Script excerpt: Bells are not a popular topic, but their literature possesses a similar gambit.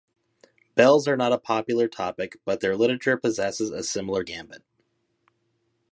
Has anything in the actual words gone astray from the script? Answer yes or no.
no